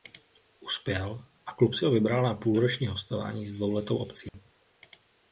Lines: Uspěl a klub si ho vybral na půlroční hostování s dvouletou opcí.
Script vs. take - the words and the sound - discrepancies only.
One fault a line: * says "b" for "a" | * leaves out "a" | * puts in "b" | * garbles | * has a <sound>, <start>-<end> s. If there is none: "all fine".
* has a dropout, 4.3-4.3 s